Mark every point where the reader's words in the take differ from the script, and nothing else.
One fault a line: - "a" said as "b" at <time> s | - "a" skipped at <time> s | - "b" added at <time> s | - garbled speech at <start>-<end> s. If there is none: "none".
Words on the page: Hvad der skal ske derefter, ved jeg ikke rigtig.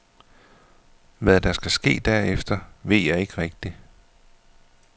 none